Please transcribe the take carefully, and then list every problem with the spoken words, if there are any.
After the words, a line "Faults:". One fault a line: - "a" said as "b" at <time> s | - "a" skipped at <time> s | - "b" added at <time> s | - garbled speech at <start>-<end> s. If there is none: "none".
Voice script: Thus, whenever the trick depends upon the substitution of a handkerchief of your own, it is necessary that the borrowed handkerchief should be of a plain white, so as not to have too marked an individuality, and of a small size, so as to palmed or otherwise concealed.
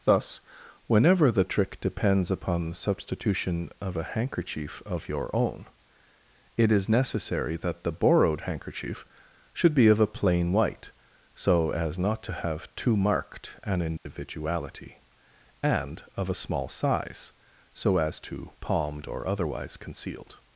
Thus, whenever the trick depends upon the substitution of a handkerchief of your own, it is necessary that the borrowed handkerchief should be of a plain white, so as not to have too marked an individuality, and of a small size, so as to palmed or otherwise concealed.
Faults:
none